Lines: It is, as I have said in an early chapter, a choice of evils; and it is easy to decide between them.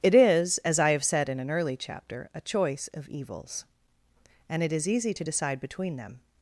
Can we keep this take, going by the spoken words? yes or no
yes